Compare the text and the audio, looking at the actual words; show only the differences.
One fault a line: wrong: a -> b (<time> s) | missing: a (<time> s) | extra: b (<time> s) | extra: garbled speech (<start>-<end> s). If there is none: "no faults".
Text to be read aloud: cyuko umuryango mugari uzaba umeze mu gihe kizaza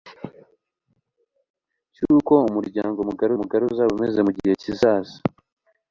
extra: mugari (3.4 s)